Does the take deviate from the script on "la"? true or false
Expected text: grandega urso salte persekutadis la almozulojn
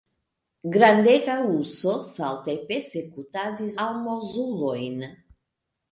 true